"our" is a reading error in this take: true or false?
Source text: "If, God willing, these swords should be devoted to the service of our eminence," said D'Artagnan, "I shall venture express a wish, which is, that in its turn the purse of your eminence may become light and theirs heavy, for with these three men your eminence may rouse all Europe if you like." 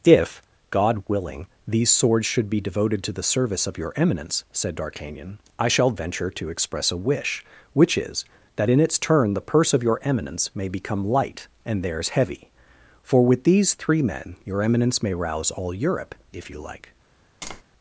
true